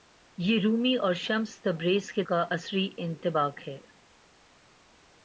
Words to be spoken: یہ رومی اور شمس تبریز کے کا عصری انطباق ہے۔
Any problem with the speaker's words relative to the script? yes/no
no